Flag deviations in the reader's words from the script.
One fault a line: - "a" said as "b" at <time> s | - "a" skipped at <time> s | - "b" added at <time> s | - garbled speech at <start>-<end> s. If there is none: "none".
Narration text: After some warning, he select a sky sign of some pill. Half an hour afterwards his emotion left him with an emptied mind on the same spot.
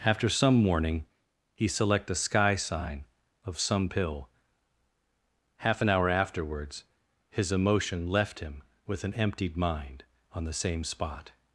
none